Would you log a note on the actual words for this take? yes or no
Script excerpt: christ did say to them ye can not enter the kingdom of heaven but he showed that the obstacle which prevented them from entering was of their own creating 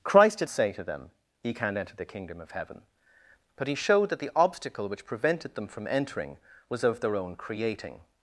no